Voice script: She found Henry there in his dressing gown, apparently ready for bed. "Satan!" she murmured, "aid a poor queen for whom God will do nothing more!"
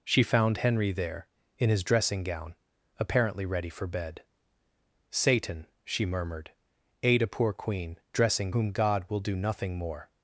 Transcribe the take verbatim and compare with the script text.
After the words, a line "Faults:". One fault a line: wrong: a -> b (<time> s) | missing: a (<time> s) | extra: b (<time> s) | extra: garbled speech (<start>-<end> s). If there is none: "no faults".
She found Henry there in his dressing gown, apparently ready for bed. "Satan!" she murmured, "aid a poor queen dressing whom God will do nothing more!"
Faults:
wrong: for -> dressing (8.1 s)